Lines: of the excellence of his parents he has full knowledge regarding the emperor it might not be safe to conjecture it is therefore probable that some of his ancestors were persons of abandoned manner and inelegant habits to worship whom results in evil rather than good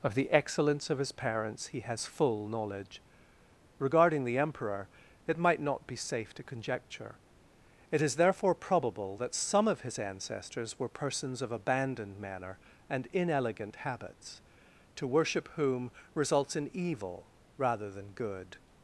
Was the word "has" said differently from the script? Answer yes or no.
no